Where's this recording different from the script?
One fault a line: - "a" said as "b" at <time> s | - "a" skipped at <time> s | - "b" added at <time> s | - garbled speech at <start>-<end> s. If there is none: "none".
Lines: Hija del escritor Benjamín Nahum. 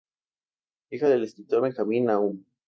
none